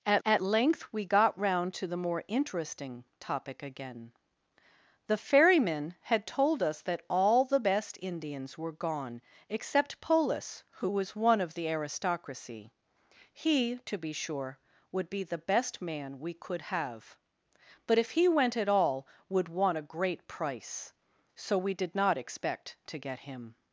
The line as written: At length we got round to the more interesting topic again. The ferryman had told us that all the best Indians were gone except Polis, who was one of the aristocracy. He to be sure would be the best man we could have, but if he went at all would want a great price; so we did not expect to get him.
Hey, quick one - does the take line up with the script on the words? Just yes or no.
no